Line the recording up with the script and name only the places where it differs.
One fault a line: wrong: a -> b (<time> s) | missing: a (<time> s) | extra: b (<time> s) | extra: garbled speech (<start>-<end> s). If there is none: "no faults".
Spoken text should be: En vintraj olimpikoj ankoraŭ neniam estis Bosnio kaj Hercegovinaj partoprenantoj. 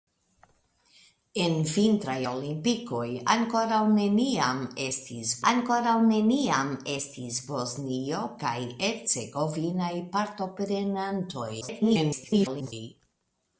extra: ankoraŭ neniam estis (5.5 s)
extra: garbled speech (11.6-12.7 s)